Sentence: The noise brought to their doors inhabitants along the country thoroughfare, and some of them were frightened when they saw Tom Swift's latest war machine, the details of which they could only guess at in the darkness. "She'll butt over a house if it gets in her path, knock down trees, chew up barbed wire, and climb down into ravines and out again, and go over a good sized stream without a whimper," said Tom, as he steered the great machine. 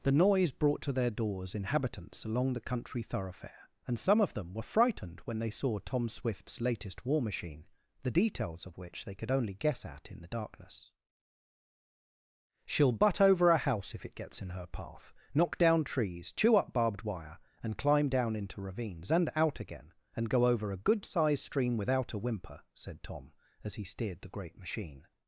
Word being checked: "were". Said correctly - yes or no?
yes